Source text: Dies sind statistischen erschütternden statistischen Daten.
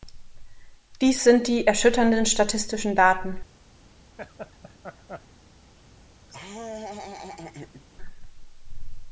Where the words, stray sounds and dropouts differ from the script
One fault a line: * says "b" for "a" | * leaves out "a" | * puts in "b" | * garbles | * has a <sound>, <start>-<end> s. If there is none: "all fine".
* says "die" for "statistischen"
* has a laugh, 4.2-5.3 s
* has a laugh, 6.3-7.8 s